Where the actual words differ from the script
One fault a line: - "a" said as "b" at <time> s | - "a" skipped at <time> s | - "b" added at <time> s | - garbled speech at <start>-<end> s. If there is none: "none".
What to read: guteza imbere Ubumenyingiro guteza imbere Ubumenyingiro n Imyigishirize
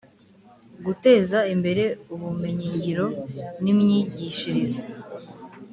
- "guteza imbere Ubumenyingiro" skipped at 3.0 s